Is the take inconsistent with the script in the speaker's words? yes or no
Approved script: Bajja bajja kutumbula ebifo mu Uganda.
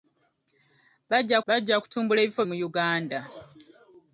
no